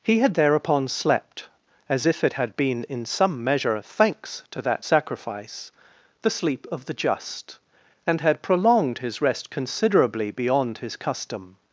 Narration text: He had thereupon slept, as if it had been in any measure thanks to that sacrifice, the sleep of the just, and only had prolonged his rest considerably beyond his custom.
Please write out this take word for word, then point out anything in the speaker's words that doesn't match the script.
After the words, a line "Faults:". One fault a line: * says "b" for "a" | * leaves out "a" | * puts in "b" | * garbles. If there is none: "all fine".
He had thereupon slept, as if it had been in some measure thanks to that sacrifice, the sleep of the just, and had prolonged his rest considerably beyond his custom.
Faults:
* says "some" for "any"
* leaves out "only"